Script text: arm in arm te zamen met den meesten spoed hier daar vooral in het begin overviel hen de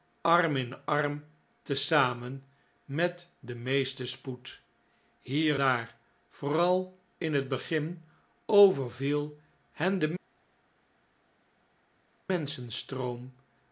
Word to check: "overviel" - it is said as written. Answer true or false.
true